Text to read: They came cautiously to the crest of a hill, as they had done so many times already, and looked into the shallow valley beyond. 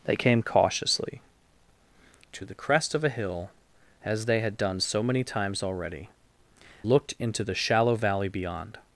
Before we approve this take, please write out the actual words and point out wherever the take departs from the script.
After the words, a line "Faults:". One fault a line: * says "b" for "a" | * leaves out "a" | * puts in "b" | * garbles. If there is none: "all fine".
They came cautiously to the crest of a hill, as they had done so many times already, looked into the shallow valley beyond.
Faults:
* leaves out "and"